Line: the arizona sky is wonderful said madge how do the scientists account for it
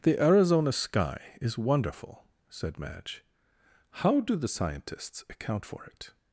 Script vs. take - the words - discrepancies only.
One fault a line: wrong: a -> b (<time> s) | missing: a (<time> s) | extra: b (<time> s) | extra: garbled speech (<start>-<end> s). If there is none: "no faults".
no faults